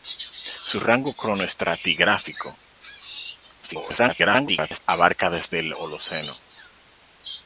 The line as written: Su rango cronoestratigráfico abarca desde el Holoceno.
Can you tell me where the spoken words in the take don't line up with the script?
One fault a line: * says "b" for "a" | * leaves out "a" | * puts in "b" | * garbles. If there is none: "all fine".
* garbles